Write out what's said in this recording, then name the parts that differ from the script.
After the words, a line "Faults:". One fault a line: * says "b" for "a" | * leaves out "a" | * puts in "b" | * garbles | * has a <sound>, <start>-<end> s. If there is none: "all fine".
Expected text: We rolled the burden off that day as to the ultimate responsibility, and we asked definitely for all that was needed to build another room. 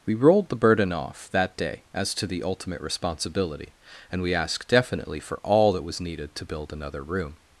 We rolled the burden off that day as to the ultimate responsibility, and we asked definitely for all that was needed to build another room.
Faults:
all fine